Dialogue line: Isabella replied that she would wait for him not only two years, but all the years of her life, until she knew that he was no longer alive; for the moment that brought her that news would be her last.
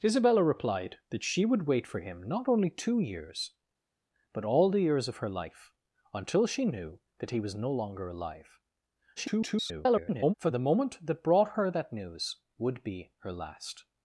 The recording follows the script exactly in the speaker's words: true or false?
false